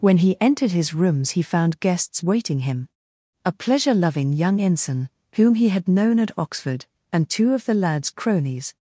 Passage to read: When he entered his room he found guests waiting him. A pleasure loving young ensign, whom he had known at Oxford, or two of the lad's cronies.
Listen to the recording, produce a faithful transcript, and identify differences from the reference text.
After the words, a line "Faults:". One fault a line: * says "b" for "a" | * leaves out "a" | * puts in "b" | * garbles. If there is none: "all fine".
When he entered his rooms he found guests waiting him. A pleasure loving young ensign, whom he had known at Oxford, and two of the lad's cronies.
Faults:
* says "rooms" for "room"
* says "and" for "or"